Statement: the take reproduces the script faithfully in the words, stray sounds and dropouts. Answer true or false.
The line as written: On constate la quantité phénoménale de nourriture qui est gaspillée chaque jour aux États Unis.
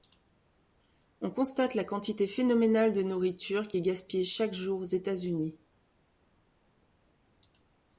true